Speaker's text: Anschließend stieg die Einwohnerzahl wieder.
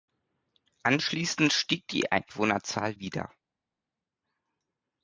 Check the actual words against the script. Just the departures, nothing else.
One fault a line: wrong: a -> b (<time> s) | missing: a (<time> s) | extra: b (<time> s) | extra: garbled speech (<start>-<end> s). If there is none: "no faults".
no faults